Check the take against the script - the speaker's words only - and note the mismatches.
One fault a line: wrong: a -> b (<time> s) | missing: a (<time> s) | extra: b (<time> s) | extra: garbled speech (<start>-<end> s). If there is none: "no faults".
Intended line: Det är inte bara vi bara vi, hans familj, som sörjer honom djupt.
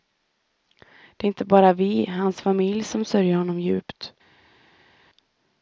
missing: bara vi (2.0 s)